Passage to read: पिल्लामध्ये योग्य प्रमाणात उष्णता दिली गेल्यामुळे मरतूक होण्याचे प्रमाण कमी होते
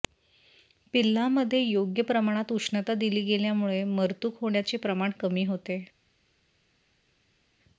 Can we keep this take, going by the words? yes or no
yes